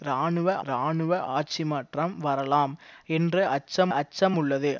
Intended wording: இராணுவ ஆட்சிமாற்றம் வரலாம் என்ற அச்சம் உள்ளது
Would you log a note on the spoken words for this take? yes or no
yes